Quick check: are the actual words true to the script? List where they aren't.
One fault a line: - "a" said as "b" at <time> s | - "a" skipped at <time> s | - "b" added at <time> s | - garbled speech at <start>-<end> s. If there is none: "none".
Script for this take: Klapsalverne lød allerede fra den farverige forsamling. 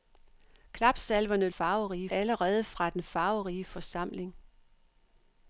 - "lød" said as "farverige" at 1.5 s